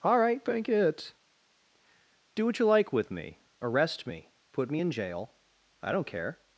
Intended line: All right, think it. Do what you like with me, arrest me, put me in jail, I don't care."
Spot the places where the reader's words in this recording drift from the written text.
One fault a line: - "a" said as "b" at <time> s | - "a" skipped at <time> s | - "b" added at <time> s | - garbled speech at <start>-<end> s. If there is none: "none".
- "think" said as "bank" at 0.4 s